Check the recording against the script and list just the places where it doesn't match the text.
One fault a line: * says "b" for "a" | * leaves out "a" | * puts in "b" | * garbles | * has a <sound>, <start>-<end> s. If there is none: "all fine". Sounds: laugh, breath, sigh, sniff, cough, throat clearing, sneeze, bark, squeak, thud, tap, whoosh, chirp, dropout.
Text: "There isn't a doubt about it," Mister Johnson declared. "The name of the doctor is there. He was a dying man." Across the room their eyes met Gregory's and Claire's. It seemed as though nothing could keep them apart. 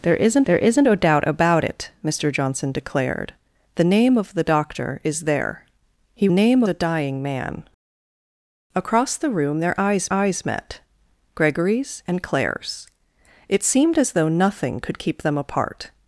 * puts in "there isn't"
* says "name" for "was"
* puts in "eyes"